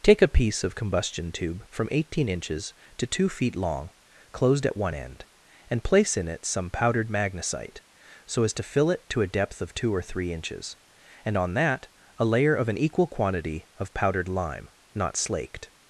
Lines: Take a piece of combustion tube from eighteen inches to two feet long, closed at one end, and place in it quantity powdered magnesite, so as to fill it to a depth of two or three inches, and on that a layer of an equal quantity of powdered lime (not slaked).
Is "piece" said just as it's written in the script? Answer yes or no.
yes